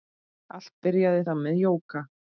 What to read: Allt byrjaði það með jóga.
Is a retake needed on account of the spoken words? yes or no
no